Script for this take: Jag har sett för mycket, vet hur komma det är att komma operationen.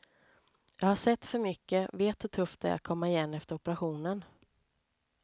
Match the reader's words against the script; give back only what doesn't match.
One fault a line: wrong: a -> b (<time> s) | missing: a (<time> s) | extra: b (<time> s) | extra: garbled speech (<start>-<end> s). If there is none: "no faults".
wrong: komma -> tufft (2.3 s)
extra: igen efter (3.1 s)